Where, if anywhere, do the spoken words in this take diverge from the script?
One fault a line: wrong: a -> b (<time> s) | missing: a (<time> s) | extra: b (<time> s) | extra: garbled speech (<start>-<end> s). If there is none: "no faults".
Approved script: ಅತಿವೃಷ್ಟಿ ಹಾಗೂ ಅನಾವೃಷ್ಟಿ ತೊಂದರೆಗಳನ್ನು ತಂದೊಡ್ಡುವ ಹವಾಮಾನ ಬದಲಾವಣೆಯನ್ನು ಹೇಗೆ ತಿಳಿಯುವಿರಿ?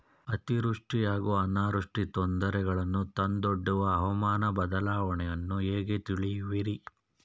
no faults